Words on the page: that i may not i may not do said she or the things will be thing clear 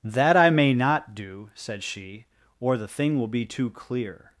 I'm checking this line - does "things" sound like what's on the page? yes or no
no